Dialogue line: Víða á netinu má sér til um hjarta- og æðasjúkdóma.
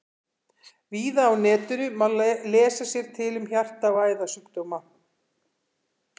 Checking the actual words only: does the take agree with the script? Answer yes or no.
no